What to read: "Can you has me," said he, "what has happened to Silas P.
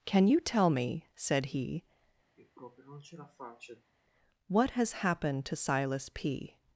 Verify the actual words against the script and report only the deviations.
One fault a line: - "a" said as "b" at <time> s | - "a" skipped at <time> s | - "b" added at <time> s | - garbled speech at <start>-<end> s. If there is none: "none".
- "has" said as "tell" at 0.4 s